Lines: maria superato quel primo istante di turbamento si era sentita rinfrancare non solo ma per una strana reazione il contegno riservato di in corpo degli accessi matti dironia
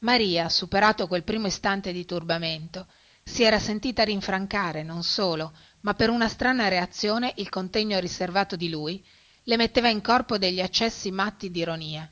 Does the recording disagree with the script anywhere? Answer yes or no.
yes